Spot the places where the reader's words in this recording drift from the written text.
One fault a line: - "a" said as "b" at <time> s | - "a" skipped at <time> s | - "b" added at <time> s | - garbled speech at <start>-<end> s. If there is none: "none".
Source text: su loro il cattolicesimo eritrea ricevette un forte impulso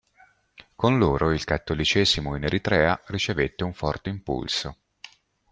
- "su" said as "con" at 0.8 s
- "in" added at 2.4 s